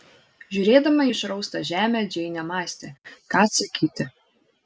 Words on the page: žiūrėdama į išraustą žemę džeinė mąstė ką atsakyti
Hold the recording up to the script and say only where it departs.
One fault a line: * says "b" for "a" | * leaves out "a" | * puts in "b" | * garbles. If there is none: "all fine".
all fine